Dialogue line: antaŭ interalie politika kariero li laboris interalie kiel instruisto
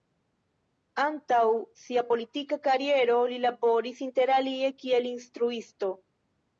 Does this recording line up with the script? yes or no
no